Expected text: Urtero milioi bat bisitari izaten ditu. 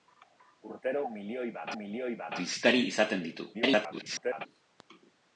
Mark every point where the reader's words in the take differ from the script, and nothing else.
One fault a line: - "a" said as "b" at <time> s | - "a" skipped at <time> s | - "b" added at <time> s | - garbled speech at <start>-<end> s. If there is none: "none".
- "milioi bat" added at 1.8 s
- garbled speech at 3.5-4.5 s